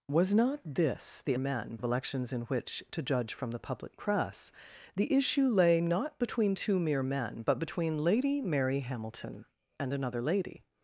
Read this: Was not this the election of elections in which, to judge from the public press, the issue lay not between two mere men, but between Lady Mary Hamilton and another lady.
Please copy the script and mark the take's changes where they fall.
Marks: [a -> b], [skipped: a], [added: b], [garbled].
Was not this the [election -> men] of elections in which, to judge from the public press, the issue lay not between two mere men, but between Lady Mary Hamilton and another lady.